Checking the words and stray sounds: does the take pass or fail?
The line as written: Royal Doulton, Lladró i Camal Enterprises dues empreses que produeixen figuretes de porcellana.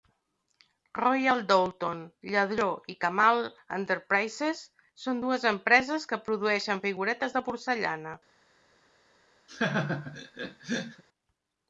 fail